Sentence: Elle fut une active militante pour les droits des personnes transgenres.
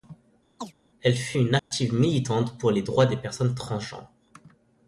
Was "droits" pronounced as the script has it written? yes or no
yes